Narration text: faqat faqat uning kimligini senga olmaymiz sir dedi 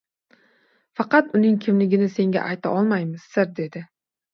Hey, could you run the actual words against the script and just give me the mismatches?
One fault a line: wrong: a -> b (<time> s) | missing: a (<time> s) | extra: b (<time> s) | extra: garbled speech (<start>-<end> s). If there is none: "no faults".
missing: faqat (1.3 s)
extra: ayta (2.6 s)